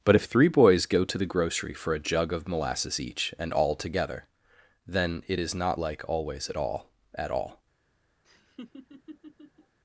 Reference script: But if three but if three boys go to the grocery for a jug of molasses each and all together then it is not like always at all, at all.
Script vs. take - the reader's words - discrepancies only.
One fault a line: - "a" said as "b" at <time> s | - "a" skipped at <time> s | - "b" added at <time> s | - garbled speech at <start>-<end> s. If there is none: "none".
- "but if three" skipped at 0.5 s